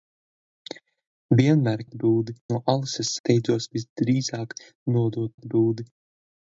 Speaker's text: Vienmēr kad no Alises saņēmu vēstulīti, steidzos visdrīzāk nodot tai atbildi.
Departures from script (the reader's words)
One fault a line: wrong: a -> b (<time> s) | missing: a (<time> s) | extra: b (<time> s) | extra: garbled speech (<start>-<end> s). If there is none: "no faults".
wrong: kad -> atbildi (1.9 s)
missing: saņēmu vēstulīti (3.1 s)
missing: tai (5.4 s)